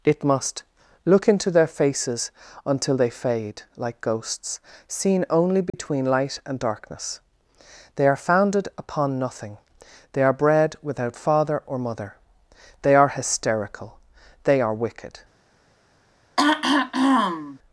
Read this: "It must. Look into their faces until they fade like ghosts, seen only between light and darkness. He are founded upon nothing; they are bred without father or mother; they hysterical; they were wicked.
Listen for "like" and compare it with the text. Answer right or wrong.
right